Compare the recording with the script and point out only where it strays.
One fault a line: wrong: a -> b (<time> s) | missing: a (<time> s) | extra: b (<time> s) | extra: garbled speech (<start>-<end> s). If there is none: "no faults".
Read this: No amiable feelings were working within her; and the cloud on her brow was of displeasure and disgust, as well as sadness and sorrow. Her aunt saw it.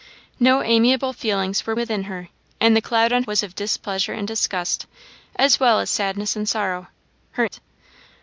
missing: working (1.8 s)
missing: her brow (3.2 s)
missing: aunt saw (7.5 s)